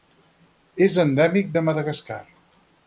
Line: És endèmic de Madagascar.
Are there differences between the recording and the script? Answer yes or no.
no